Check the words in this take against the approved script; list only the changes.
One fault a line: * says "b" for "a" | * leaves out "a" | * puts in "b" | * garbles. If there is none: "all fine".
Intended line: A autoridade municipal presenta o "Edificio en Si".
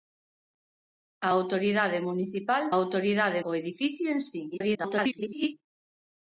* says "autoridade" for "presenta"
* garbles